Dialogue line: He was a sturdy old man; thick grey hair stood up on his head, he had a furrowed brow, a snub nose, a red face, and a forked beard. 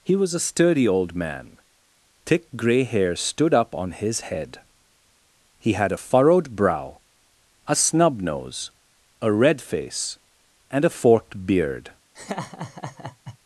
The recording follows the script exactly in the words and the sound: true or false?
false